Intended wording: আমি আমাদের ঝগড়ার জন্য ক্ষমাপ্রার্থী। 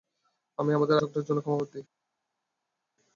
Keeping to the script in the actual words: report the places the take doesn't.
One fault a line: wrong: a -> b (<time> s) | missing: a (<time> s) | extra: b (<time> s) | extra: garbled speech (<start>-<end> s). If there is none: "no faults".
no faults